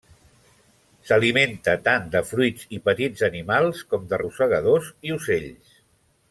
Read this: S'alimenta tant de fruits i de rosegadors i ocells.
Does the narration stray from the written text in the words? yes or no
yes